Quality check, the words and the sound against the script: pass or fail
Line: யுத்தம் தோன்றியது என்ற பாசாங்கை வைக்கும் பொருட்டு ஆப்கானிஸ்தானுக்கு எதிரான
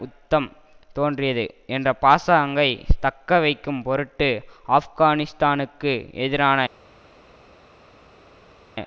fail